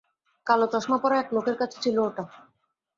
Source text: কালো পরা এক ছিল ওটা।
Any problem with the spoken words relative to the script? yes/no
yes